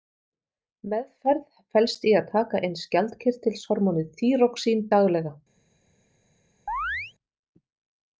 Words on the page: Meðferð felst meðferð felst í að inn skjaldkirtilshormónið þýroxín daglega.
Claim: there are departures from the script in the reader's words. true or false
true